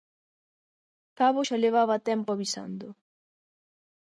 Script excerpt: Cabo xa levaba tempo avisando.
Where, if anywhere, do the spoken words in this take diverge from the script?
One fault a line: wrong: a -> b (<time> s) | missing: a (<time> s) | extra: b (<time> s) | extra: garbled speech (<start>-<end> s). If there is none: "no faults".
no faults